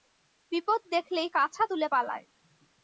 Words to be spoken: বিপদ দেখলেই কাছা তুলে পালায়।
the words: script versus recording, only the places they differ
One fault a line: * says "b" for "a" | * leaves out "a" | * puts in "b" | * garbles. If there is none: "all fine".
all fine